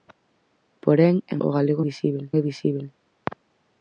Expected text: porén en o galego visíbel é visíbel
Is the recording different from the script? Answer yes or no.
no